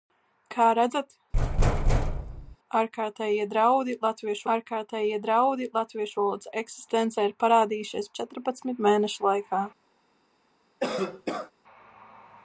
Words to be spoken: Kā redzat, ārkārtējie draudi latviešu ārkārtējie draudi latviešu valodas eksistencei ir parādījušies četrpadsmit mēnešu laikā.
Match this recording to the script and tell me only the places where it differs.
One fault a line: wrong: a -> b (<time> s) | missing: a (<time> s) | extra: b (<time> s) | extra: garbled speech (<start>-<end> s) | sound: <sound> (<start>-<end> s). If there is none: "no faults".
sound: thud (1.3-2.6 s)
sound: cough (10.8-11.5 s)